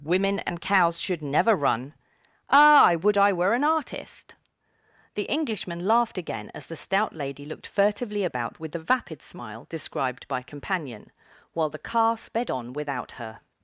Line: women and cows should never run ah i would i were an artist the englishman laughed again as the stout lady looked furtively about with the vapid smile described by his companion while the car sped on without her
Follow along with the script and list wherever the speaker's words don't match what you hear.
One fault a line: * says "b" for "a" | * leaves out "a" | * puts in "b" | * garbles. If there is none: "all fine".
* leaves out "his"